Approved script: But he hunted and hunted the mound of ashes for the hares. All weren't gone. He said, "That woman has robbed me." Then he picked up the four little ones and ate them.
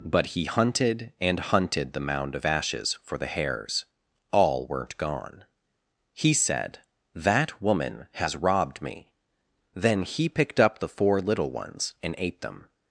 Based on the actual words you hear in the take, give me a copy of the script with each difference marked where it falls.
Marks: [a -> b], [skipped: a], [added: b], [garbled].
But he hunted and hunted the mound of ashes for the hares. All weren't gone. He said, "That woman has robbed me." Then he picked up the four little ones and ate them.